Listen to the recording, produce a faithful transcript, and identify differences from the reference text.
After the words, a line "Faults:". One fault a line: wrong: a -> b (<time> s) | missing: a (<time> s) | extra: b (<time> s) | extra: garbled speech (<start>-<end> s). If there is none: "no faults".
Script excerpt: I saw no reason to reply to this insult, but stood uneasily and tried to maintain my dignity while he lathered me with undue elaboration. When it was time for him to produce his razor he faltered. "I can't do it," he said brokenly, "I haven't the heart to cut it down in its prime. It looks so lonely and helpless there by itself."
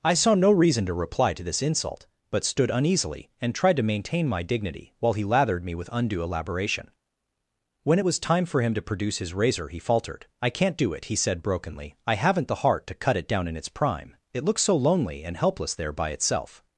I saw no reason to reply to this insult, but stood uneasily and tried to maintain my dignity while he lathered me with undue elaboration. When it was time for him to produce his razor he faltered. "I can't do it," he said brokenly, "I haven't the heart to cut it down in its prime. It looks so lonely and helpless there by itself."
Faults:
no faults